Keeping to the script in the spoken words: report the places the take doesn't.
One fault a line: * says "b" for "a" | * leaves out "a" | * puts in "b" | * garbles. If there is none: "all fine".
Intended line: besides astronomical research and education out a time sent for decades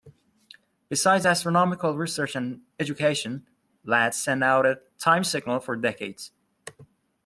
* puts in "ladd sent"
* says "signal" for "sent"